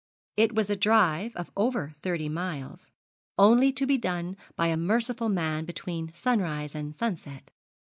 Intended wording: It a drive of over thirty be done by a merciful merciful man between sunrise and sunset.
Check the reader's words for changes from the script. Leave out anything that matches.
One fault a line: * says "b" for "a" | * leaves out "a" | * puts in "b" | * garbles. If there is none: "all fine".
* puts in "was"
* puts in "miles only to"
* leaves out "merciful"